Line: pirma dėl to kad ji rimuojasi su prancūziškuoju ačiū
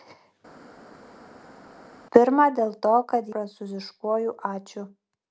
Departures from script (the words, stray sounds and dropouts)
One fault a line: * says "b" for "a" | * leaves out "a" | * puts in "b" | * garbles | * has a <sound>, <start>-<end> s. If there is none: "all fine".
* leaves out "ji rimuojasi su"